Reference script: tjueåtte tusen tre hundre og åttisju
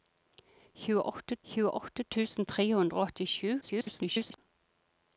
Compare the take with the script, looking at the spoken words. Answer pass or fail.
fail